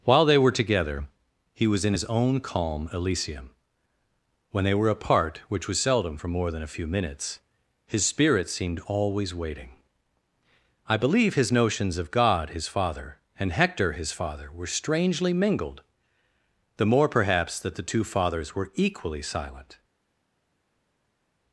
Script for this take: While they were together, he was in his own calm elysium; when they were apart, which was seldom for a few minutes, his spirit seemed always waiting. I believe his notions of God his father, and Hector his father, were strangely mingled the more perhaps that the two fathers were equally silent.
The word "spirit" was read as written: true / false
true